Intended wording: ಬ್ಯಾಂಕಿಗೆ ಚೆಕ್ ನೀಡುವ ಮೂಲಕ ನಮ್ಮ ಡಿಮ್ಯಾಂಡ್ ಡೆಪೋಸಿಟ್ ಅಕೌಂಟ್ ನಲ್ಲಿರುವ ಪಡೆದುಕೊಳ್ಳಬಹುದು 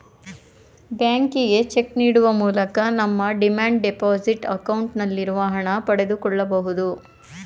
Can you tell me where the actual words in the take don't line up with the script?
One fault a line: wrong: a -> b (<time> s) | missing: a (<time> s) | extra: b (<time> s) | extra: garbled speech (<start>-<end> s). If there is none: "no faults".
extra: ಹಣ (5.6 s)